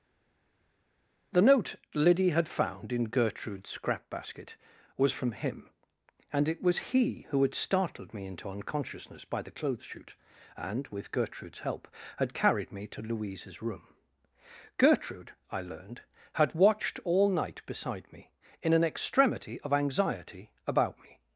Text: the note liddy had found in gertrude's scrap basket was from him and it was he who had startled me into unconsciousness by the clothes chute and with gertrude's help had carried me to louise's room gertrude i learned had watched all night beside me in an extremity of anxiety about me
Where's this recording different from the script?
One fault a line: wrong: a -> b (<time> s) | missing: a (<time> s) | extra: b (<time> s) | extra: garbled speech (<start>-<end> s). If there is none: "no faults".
no faults